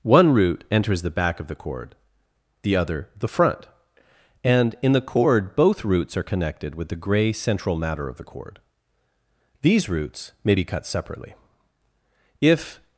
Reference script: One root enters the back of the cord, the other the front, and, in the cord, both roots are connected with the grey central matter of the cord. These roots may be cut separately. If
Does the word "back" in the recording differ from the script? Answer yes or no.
no